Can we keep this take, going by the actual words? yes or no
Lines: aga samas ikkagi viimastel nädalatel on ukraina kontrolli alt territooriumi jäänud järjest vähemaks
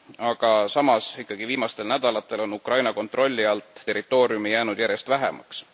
yes